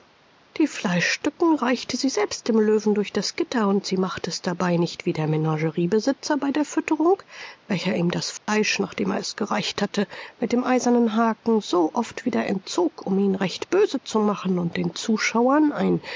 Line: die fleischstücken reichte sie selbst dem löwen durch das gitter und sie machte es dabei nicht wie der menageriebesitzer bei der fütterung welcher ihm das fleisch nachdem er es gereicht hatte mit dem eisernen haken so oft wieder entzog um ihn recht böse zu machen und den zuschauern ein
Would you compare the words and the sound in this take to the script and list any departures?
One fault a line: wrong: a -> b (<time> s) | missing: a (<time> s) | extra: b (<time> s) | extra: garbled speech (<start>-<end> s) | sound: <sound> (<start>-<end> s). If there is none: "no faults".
sound: dropout (8.4-8.5 s)